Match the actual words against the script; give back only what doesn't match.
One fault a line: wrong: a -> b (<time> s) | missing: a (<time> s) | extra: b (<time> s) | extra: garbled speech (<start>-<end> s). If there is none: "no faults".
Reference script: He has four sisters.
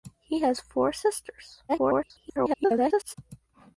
extra: garbled speech (1.7-3.1 s)